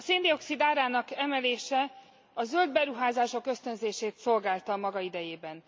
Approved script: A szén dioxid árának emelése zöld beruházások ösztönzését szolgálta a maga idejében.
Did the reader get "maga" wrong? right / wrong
right